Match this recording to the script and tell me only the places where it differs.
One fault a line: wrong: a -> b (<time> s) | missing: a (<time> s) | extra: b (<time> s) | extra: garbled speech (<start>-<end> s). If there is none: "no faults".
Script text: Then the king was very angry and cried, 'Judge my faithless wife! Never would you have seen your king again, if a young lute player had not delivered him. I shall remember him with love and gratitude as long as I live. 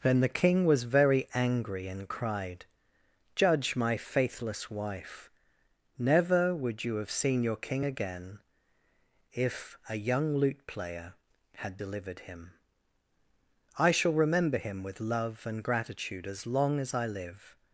missing: not (11.8 s)